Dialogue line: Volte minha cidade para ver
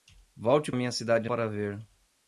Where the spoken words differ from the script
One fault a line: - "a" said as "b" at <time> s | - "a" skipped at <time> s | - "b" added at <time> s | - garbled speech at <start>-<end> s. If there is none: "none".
none